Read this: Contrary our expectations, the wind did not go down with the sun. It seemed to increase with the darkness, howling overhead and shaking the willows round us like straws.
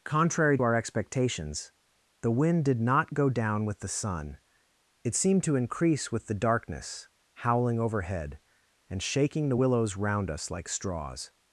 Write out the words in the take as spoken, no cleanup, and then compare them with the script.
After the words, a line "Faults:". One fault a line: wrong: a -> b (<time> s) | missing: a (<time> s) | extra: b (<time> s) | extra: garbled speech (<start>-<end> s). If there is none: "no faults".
Contrary our expectations, the wind did not go down with the sun. It seemed to increase with the darkness, howling overhead and shaking the willows round us like straws.
Faults:
no faults